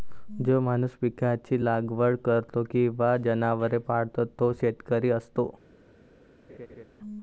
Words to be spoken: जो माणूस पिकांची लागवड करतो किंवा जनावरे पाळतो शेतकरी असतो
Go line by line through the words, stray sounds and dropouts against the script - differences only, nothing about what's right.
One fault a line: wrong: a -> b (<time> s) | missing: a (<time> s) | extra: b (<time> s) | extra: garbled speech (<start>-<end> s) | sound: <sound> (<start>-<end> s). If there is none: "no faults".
extra: तो (4.4 s)
sound: laugh (6.5-6.8 s)